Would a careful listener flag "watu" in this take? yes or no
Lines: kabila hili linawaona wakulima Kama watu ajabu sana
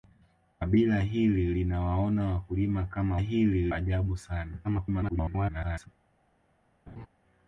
yes